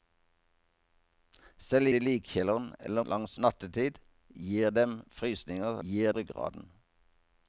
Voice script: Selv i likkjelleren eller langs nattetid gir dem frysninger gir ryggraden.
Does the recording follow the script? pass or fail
pass